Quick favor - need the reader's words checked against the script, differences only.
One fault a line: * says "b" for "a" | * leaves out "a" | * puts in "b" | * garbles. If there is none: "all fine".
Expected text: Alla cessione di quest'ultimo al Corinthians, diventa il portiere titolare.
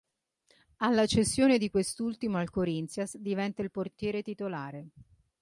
all fine